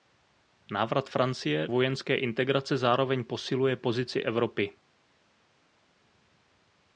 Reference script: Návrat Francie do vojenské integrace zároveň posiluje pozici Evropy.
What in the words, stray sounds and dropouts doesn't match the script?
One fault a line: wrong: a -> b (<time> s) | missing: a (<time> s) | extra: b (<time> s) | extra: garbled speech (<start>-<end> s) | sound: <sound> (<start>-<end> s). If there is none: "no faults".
missing: do (1.7 s)